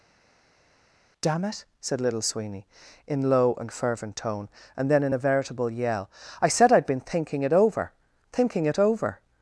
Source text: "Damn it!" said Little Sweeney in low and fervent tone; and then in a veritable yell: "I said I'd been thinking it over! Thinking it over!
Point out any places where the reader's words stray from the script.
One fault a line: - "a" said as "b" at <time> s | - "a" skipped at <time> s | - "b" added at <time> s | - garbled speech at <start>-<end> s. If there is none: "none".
none